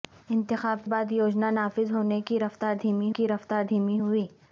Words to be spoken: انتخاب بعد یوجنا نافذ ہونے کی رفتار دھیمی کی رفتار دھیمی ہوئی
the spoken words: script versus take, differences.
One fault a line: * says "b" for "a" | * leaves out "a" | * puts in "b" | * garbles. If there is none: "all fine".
all fine